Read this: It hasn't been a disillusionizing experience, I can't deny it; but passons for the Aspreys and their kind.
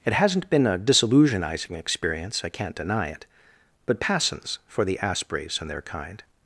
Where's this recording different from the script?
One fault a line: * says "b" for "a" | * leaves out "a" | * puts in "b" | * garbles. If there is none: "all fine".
all fine